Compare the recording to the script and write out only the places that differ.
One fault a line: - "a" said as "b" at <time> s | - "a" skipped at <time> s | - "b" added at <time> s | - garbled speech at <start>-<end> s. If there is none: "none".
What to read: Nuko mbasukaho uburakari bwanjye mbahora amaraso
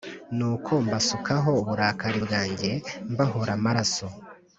none